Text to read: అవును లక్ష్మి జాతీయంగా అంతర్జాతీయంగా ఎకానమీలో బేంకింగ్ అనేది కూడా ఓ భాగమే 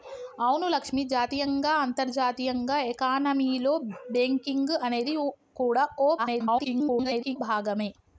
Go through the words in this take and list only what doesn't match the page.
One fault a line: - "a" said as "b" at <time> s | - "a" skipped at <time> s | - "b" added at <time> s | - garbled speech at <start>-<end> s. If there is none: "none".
- garbled speech at 6.2-7.4 s